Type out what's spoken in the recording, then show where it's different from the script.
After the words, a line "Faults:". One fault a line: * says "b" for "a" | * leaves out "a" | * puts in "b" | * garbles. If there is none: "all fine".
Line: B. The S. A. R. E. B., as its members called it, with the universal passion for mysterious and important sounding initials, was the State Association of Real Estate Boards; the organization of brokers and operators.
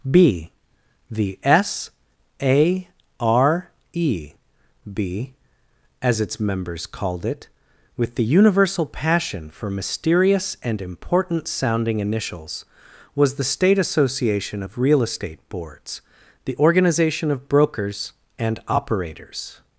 B. The S. A. R. E. B., as its members called it, with the universal passion for mysterious and important sounding initials, was the State Association of Real Estate Boards; the organization of brokers and operators.
Faults:
all fine